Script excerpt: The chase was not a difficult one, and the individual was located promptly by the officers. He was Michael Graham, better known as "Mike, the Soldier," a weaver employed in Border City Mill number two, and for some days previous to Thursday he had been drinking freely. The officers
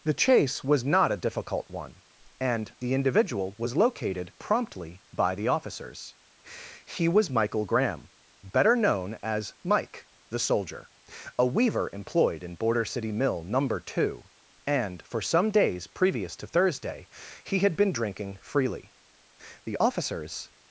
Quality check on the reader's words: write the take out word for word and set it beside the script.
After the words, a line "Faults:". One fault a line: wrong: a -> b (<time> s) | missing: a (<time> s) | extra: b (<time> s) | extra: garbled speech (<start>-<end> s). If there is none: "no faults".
The chase was not a difficult one, and the individual was located promptly by the officers. He was Michael Graham, better known as "Mike, the Soldier," a weaver employed in Border City Mill number two, and for some days previous to Thursday he had been drinking freely. The officers
Faults:
no faults